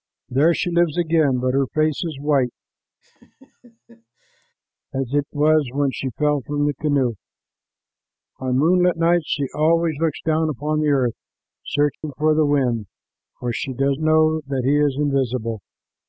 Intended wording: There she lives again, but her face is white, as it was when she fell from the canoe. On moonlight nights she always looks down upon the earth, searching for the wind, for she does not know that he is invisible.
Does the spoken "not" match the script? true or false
false